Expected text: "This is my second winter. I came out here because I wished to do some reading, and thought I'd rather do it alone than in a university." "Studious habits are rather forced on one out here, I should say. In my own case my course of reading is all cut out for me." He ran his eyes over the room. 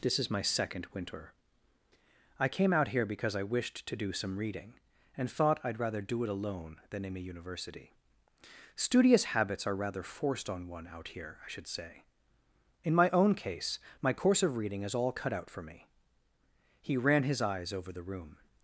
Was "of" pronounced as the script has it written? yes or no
yes